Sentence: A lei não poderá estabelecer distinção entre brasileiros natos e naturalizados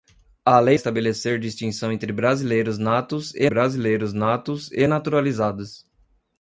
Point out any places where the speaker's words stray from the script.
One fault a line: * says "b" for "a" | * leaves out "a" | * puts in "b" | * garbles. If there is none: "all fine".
* leaves out "não poderá"
* puts in "brasileiros natos e"